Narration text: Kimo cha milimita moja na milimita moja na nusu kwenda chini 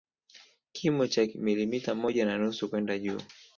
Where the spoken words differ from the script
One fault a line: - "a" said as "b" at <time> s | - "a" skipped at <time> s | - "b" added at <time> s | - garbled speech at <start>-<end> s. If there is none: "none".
- "milimita moja na" skipped at 2.4 s
- "chini" said as "juu" at 3.0 s